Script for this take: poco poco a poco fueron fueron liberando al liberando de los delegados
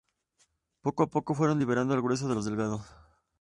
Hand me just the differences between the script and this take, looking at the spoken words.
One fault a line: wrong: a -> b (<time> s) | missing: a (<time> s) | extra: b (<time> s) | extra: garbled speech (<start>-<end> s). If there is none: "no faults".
missing: poco (1.0 s)
missing: fueron (1.6 s)
wrong: liberando -> grueso (2.0 s)